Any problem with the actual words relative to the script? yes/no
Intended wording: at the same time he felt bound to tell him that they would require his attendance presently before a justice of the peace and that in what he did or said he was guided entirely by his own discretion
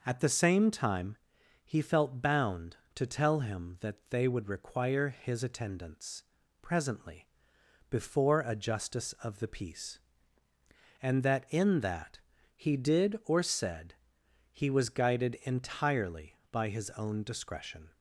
yes